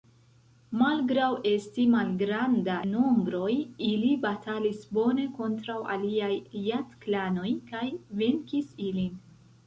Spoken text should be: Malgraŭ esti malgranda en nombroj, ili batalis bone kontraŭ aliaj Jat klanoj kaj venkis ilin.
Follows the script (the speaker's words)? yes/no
no